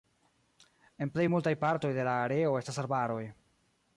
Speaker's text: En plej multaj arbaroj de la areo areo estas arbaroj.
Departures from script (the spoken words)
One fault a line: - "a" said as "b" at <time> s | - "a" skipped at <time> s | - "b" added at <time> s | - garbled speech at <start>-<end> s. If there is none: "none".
- "arbaroj" said as "partoj" at 1.6 s
- "areo" skipped at 2.5 s